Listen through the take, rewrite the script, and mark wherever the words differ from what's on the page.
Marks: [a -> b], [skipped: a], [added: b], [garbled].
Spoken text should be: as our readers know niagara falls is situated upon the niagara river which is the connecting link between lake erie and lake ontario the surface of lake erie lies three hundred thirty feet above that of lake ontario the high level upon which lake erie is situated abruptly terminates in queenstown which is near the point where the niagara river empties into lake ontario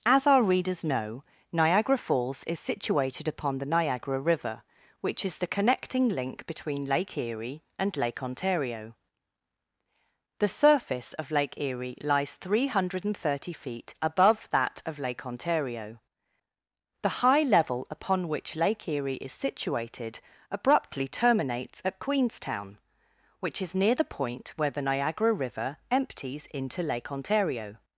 as our readers know niagara falls is situated upon the niagara river which is the connecting link between lake erie and lake ontario the surface of lake erie lies three hundred thirty feet above that of lake ontario the high level upon which lake erie is situated abruptly terminates [in -> at] queenstown which is near the point where the niagara river empties into lake ontario